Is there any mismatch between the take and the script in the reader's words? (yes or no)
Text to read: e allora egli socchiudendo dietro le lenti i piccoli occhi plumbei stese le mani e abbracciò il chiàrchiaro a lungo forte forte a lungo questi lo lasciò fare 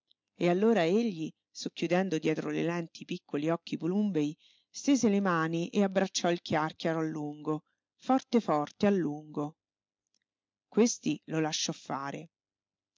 no